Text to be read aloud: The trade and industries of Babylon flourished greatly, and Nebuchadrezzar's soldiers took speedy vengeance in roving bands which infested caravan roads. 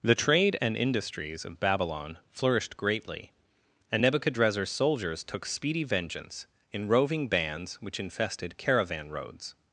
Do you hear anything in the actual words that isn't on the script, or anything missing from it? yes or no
no